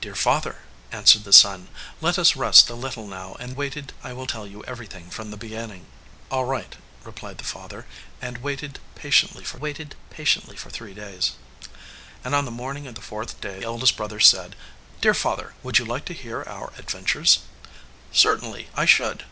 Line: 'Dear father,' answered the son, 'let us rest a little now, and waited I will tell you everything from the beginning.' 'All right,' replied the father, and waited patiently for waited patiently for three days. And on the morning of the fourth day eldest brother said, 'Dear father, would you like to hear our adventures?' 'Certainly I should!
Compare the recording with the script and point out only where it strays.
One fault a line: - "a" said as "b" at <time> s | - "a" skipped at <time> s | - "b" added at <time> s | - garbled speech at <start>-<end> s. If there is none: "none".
none